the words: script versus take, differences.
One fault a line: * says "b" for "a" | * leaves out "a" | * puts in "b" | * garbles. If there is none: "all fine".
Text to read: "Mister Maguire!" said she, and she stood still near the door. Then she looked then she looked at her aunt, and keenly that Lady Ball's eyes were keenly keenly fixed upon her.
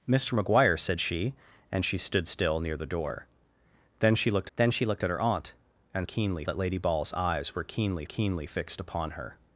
all fine